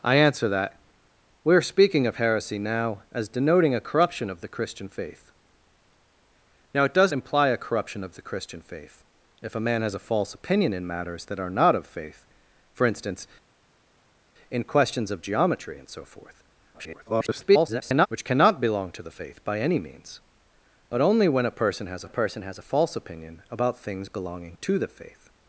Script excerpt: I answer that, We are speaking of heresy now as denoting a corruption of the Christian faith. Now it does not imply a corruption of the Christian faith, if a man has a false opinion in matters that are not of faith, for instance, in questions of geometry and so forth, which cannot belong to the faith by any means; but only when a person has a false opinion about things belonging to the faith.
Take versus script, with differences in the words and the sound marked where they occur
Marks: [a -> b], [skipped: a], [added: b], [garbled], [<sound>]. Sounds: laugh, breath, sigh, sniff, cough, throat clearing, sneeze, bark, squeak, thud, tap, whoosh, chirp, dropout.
I answer that, We are speaking of heresy now as denoting a corruption of the Christian faith. Now it does [skipped: not] imply a corruption of the Christian faith, if a man has a false opinion in matters that are not of faith, for instance, in questions of geometry and so forth, [garbled] which cannot belong to the faith by any means; but only when a person has a [added: person has a] false opinion about things belonging to the faith.